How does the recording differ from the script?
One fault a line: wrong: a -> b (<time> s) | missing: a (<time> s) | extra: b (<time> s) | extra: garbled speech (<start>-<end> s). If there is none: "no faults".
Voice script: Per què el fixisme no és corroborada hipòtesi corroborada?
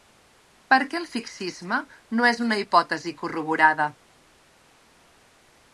wrong: corroborada -> una (2.5 s)